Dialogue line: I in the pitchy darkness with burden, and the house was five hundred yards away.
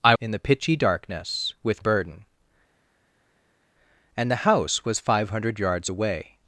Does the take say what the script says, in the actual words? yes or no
yes